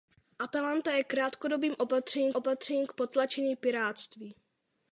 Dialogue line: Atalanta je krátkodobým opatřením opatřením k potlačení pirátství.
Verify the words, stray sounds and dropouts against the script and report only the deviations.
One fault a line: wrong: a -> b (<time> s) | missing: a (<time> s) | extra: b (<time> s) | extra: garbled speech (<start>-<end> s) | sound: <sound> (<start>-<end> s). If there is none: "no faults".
no faults